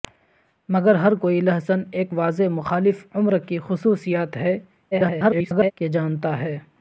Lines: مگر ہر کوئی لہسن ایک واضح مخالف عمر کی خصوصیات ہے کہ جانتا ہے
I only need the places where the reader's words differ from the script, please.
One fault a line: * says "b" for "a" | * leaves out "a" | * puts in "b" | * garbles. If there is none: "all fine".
* garbles